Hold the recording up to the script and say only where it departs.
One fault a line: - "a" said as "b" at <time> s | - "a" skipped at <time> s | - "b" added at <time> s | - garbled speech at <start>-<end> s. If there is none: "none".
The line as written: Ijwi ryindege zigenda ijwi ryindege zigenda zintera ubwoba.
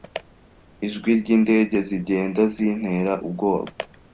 - "ijwi ryindege zigenda" skipped at 2.4 s